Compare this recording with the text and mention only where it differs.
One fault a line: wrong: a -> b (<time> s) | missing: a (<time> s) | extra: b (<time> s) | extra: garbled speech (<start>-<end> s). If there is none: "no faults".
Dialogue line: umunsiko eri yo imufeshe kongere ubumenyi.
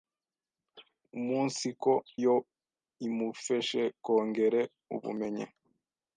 missing: eri (1.9 s)